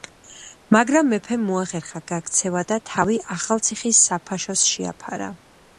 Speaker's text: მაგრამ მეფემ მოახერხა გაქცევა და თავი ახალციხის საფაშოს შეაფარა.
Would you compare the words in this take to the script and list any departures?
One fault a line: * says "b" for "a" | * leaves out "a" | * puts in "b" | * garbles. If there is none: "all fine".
all fine